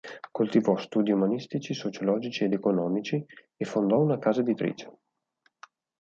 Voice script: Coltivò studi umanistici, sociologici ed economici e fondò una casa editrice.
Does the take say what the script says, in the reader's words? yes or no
yes